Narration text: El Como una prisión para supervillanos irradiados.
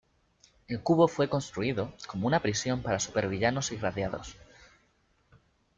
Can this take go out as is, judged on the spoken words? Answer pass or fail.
fail